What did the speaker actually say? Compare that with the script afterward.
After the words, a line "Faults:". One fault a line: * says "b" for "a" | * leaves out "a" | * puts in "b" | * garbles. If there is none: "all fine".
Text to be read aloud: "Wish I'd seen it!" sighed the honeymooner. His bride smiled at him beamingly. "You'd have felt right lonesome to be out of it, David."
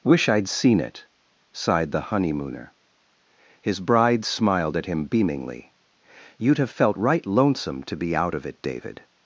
"Wish I'd seen it!" sighed the honeymooner. His bride smiled at him beamingly. "You'd have felt right lonesome to be out of it, David."
Faults:
all fine